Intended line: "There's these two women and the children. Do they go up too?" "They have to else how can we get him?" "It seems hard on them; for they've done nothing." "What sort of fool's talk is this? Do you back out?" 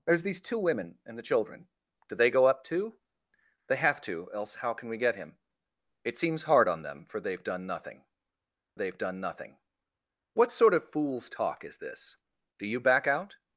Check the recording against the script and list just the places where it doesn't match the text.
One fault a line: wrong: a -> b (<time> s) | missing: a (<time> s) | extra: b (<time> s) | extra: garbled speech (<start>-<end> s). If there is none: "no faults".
extra: they've done nothing (8.7 s)